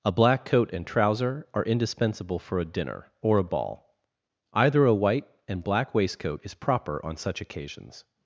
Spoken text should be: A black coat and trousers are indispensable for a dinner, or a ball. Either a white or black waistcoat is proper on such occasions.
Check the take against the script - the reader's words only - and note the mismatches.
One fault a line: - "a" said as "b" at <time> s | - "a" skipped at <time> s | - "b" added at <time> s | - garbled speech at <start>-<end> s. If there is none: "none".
- "trousers" said as "trouser" at 0.9 s
- "or" said as "and" at 5.5 s